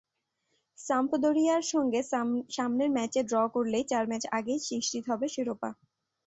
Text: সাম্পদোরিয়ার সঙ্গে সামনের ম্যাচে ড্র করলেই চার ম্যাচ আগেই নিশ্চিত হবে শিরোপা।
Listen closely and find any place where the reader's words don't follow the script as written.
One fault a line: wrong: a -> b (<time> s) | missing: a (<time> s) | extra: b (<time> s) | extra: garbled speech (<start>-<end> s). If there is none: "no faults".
no faults